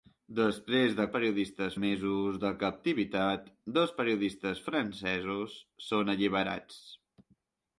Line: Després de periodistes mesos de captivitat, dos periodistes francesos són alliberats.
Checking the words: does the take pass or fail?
pass